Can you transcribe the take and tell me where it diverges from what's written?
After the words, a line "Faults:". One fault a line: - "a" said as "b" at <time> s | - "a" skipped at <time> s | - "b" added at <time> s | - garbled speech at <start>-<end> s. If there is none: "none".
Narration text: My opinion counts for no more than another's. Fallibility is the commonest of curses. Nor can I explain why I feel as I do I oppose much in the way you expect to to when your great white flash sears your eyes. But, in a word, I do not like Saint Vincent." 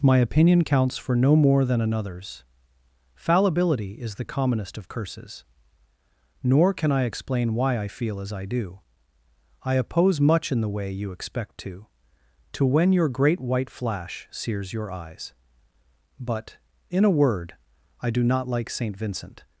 My opinion counts for no more than another's. Fallibility is the commonest of curses. Nor can I explain why I feel as I do I oppose much in the way you expect to to when your great white flash sears your eyes. But, in a word, I do not like Saint Vincent."
Faults:
none